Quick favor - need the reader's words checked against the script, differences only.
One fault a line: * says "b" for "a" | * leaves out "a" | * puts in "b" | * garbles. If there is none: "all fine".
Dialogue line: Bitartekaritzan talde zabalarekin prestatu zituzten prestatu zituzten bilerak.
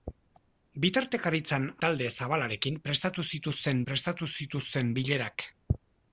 all fine